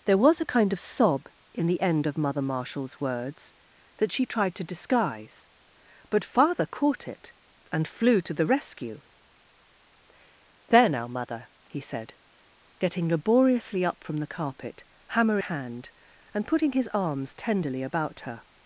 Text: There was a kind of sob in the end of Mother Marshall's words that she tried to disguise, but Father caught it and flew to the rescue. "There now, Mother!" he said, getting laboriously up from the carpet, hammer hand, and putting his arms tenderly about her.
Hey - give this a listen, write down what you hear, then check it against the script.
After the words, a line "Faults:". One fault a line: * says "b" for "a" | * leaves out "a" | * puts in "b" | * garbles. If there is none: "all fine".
There was a kind of sob in the end of Mother Marshall's words that she tried to disguise, but Father caught it and flew to the rescue. "There now, Mother!" he said, getting laboriously up from the carpet, hammer hand, and putting his arms tenderly about her.
Faults:
all fine